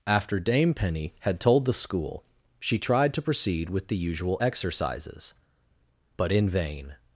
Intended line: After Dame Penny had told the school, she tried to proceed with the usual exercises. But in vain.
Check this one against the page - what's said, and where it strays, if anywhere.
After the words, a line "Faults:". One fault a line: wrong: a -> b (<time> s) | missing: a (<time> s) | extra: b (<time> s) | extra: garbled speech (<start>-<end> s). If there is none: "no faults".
After Dame Penny had told the school, she tried to proceed with the usual exercises. But in vain.
Faults:
no faults